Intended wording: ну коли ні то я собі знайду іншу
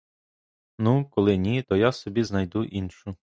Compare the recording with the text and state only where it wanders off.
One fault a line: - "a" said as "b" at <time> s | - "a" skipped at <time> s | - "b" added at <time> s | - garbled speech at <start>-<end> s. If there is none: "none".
none